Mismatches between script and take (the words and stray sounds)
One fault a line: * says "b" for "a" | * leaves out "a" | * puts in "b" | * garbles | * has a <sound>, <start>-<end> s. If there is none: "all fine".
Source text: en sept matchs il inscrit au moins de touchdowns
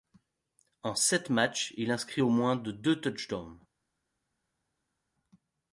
* puts in "deux"